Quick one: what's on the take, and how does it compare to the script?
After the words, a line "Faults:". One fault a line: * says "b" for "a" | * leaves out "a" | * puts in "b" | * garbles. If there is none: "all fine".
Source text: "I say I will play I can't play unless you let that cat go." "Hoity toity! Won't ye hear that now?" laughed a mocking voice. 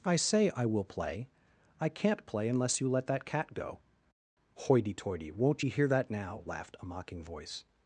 "I say I will play I can't play unless you let that cat go." "Hoity toity! Won't ye hear that now?" laughed a mocking voice.
Faults:
all fine